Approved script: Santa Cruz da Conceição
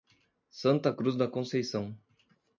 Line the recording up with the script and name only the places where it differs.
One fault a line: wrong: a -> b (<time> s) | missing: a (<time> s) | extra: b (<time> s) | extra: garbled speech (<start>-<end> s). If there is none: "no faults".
no faults